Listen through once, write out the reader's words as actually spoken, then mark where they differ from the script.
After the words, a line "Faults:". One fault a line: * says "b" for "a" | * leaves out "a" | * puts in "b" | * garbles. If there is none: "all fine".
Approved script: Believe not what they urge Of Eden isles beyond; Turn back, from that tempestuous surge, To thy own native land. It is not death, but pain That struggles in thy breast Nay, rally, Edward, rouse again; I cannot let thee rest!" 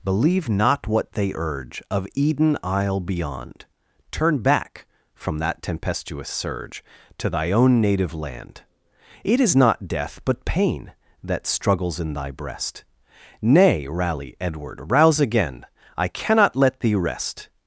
Believe not what they urge Of Eden isle beyond; Turn back, from that tempestuous surge, To thy own native land. It is not death, but pain That struggles in thy breast Nay, rally, Edward, rouse again; I cannot let thee rest!"
Faults:
* says "isle" for "isles"